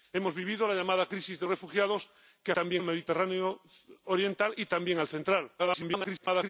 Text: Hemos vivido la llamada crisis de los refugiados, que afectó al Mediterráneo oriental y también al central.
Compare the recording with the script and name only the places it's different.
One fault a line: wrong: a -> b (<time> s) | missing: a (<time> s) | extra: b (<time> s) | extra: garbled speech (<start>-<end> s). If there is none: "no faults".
missing: los (1.5 s)
wrong: afectó -> también (2.5 s)
extra: garbled speech (5.6-6.5 s)